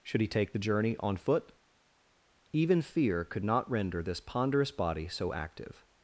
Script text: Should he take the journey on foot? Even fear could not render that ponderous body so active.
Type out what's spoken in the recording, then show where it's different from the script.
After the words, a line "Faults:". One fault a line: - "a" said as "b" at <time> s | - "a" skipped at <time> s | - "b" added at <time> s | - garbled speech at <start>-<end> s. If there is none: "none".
Should he take the journey on foot? Even fear could not render this ponderous body so active.
Faults:
- "that" said as "this" at 4.0 s